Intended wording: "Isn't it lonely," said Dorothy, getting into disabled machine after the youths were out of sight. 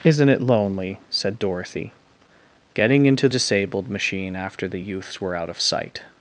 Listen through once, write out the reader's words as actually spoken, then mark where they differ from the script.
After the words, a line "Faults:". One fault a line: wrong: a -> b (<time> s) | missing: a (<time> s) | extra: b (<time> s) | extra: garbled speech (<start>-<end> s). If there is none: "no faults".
"Isn't it lonely," said Dorothy, getting into disabled machine after the youths were out of sight.
Faults:
no faults